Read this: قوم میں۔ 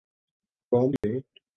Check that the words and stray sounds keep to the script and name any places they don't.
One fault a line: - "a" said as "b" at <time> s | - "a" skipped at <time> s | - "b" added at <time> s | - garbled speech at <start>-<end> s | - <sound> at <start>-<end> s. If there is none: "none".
- dropout at 1.0-1.0 s